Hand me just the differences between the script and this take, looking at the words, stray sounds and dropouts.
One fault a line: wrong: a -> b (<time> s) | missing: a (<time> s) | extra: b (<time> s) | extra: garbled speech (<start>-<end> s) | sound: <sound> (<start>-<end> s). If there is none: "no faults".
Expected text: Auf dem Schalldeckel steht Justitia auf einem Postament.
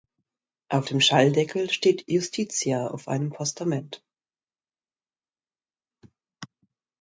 no faults